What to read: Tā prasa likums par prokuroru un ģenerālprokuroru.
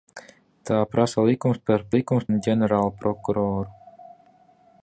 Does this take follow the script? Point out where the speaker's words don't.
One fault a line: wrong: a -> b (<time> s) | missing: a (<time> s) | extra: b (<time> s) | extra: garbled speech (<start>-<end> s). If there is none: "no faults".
wrong: prokuroru -> likums (1.9 s)